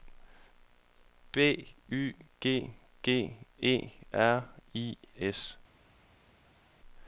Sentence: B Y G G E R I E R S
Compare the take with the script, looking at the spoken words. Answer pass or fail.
fail